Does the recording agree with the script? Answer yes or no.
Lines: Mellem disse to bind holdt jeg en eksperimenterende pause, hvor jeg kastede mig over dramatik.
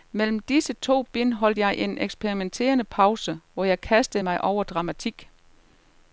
yes